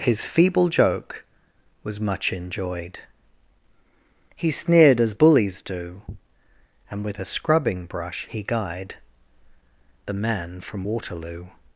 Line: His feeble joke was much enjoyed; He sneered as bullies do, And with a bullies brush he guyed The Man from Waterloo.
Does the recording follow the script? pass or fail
fail